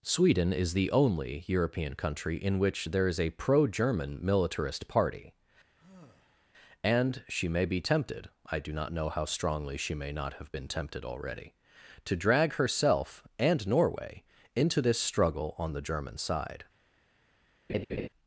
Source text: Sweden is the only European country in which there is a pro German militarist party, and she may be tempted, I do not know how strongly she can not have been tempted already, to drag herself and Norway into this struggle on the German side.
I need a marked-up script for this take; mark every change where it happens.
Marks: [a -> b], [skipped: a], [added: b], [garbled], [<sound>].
Sweden is the only European country in which there is a pro German militarist party, [sigh] and she may be tempted, I do not know how strongly she [can -> may] not have been tempted already, to drag herself and Norway into this struggle on the German side. [laugh]